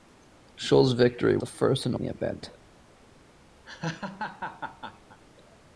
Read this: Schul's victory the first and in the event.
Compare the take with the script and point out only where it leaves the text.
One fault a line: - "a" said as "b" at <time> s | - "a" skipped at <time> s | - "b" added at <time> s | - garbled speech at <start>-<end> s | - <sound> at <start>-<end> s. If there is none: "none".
- laugh at 3.6-5.2 s